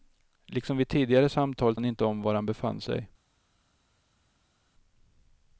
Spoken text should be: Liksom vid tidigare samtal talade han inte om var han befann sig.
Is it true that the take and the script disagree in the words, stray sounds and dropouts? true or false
true